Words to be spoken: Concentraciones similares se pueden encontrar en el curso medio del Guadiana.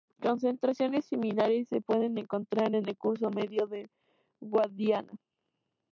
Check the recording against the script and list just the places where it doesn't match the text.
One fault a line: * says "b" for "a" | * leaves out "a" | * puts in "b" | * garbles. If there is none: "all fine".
all fine